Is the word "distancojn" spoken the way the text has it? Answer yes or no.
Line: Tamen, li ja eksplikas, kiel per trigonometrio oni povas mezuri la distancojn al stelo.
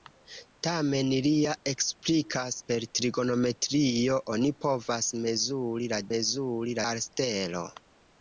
no